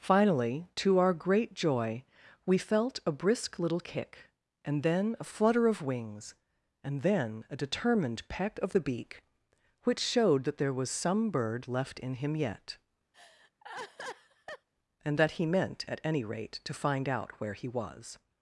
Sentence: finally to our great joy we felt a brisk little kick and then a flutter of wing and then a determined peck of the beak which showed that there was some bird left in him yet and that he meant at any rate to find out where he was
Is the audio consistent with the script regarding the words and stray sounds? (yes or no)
no